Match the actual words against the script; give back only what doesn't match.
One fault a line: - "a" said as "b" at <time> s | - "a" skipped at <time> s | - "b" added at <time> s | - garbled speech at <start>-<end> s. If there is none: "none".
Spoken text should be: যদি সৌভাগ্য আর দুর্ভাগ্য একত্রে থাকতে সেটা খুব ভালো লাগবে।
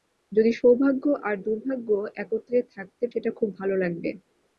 none